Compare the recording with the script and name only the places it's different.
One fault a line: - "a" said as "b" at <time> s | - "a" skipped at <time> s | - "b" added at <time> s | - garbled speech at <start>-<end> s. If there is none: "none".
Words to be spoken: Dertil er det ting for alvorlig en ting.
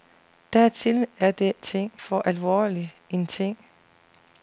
none